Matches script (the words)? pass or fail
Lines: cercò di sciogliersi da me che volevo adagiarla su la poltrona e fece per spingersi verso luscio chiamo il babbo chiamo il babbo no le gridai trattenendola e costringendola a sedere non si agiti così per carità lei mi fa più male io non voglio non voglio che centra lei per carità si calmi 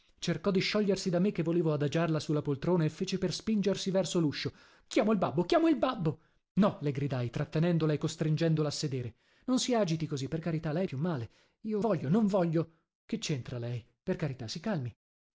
fail